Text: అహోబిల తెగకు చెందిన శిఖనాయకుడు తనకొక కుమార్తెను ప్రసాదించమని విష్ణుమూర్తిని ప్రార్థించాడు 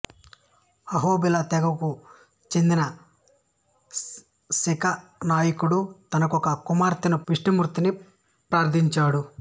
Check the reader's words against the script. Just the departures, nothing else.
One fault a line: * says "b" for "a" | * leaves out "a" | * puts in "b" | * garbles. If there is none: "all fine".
* leaves out "ప్రసాదించమని"